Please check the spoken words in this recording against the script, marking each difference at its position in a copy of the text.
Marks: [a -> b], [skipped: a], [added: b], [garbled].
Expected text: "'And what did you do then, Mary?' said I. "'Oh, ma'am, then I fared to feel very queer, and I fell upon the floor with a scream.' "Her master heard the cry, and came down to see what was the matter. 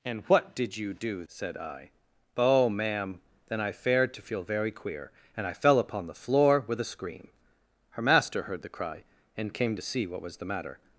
"'And what did you do [skipped: then, Mary?'] said I. "'Oh, ma'am, then I fared to feel very queer, and I fell upon the floor with a scream.' "Her master heard the cry, and came [skipped: down] to see what was the matter.